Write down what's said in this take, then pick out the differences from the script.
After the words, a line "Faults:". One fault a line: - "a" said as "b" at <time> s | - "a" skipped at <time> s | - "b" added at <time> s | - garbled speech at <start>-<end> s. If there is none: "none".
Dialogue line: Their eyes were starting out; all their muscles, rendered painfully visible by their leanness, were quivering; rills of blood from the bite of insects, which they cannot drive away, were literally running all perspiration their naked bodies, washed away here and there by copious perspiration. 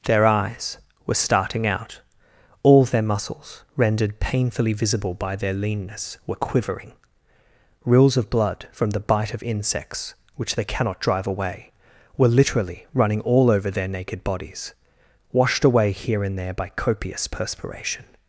Their eyes were starting out; all their muscles, rendered painfully visible by their leanness, were quivering; rills of blood from the bite of insects, which they cannot drive away, were literally running all over their naked bodies, washed away here and there by copious perspiration.
Faults:
- "perspiration" said as "over" at 13.5 s